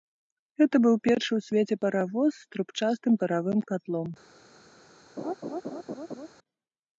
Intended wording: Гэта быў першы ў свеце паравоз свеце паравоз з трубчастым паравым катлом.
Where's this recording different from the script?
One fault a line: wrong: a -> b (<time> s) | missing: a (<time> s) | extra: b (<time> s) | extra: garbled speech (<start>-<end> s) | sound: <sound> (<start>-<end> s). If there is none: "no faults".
missing: свеце паравоз (2.3 s)
sound: laugh (5.2-6.3 s)